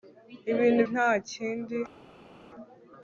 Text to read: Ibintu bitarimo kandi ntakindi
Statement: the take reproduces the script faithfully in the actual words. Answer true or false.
false